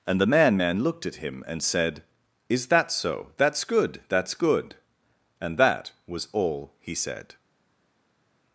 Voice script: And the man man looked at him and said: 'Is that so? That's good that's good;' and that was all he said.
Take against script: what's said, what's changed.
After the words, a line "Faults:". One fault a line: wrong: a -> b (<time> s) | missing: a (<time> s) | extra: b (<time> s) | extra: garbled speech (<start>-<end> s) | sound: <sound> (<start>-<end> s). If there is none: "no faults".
And the man man looked at him and said: 'Is that so? That's good that's good;' and that was all he said.
Faults:
no faults